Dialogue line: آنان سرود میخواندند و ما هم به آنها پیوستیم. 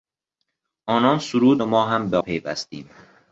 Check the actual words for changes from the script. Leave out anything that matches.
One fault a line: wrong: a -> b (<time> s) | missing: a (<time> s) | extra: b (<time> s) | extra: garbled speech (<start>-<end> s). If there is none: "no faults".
missing: میخواندند (1.6 s)
missing: آنها (2.2 s)